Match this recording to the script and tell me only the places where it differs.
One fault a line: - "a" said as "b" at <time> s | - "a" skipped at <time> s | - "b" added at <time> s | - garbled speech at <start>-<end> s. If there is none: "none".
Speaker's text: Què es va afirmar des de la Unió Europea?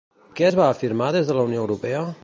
none